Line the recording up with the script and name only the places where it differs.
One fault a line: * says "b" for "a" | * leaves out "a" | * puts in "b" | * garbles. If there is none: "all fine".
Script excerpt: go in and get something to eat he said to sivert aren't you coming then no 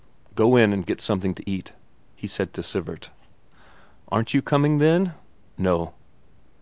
all fine